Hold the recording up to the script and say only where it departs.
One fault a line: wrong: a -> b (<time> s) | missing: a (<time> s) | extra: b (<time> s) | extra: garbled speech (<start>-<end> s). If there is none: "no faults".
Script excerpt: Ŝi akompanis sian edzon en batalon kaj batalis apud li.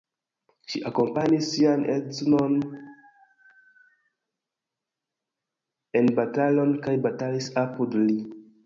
no faults